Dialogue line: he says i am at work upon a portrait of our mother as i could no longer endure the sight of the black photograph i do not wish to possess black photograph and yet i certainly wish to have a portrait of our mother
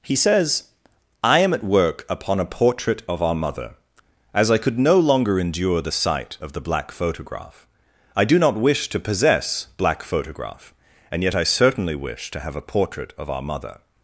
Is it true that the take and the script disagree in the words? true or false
false